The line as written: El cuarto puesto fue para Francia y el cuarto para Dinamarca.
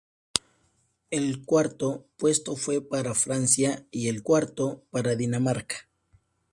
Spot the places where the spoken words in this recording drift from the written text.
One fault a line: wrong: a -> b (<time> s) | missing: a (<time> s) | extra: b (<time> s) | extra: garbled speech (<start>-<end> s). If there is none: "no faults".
no faults